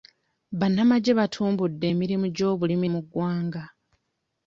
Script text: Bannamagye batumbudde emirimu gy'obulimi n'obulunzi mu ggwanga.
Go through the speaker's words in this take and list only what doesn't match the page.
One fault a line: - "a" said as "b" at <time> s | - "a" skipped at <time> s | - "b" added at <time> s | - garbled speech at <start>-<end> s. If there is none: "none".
- "n'obulunzi" skipped at 2.9 s